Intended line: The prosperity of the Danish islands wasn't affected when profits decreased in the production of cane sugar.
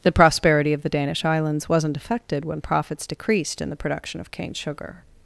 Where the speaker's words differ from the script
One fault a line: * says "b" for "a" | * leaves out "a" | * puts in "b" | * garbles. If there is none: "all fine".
all fine